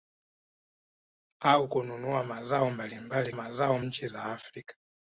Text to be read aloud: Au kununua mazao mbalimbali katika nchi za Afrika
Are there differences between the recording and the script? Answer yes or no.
yes